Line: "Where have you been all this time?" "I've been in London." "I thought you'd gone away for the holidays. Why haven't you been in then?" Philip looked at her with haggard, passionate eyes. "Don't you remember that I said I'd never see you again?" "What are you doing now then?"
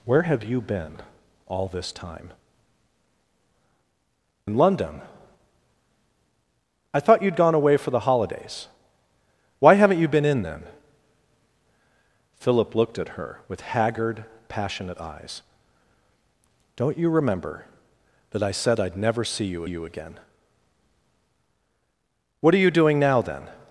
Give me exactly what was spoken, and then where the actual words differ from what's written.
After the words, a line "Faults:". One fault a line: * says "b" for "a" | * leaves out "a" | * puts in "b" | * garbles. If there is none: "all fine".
"Where have you been all this time?" "In London." "I thought you'd gone away for the holidays. Why haven't you been in then?" Philip looked at her with haggard, passionate eyes. "Don't you remember that I said I'd never see you you again?" "What are you doing now then?"
Faults:
* leaves out "I've been"
* puts in "you"